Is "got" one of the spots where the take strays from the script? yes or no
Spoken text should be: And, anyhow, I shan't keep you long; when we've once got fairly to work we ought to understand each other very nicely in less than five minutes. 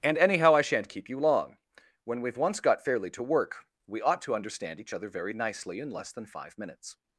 no